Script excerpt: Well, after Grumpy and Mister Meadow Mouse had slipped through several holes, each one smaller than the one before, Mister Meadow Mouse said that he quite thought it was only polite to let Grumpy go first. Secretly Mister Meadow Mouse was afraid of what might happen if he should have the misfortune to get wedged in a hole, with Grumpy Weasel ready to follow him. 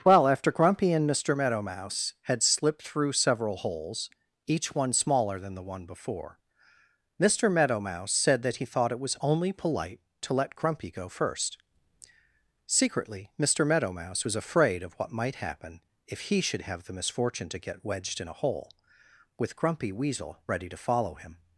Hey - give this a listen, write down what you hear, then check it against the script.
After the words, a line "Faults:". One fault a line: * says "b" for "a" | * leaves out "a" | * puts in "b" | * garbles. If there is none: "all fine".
Well, after Grumpy and Mister Meadow Mouse had slipped through several holes, each one smaller than the one before, Mister Meadow Mouse said that he thought it was only polite to let Grumpy go first. Secretly Mister Meadow Mouse was afraid of what might happen if he should have the misfortune to get wedged in a hole, with Grumpy Weasel ready to follow him.
Faults:
* leaves out "quite"